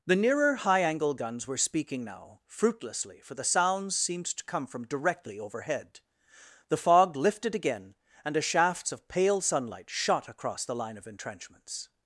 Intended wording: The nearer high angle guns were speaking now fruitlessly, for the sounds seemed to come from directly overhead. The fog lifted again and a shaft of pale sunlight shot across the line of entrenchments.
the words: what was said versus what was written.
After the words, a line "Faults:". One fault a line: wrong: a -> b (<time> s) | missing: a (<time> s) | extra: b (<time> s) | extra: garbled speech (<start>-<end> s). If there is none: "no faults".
The nearer high angle guns were speaking now fruitlessly, for the sounds seemed to come from directly overhead. The fog lifted again and a shafts of pale sunlight shot across the line of entrenchments.
Faults:
wrong: shaft -> shafts (8.4 s)